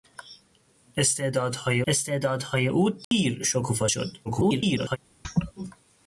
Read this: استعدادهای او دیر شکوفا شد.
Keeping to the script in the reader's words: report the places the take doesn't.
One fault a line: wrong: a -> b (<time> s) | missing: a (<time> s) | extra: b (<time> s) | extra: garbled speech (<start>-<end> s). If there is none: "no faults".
extra: استعدادهای (1.9 s)
extra: garbled speech (4.2-5.0 s)